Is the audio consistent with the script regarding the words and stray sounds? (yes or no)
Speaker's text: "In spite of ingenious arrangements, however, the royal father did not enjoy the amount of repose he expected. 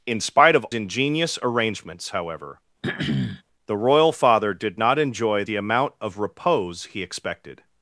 no